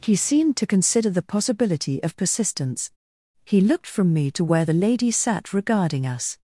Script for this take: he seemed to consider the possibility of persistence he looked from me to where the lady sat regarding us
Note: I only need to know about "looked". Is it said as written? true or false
true